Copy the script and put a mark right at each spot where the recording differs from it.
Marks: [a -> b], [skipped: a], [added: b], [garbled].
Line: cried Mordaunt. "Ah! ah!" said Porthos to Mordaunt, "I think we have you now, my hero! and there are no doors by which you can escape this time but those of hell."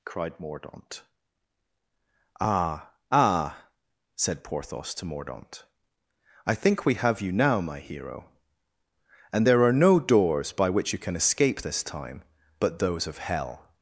cried Mordaunt. "Ah! ah!" said Porthos to Mordaunt, "I think we have you now, my hero! and there are no doors by which you can escape this time but those of hell."